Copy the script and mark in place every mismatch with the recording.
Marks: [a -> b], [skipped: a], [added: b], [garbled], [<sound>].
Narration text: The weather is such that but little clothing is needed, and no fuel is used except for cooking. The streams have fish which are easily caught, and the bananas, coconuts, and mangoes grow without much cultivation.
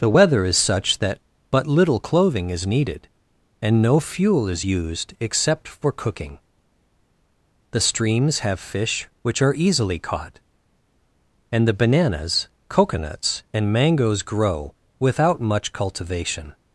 The weather is such that but little clothing is needed, and no fuel is used except for cooking. The streams have fish which are easily caught, and the bananas, coconuts, and mangoes grow without much cultivation.